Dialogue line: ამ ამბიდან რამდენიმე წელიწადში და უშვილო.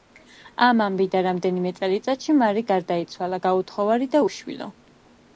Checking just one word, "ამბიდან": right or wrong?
right